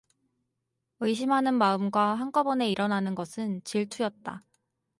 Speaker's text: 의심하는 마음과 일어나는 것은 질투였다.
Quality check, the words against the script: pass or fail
fail